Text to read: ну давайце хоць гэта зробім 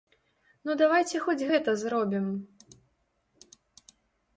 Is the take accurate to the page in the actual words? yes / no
yes